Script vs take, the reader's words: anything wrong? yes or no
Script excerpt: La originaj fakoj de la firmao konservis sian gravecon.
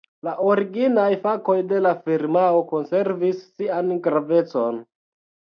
no